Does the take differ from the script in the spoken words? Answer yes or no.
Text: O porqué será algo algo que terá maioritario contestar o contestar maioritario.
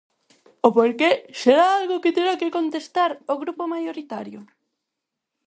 yes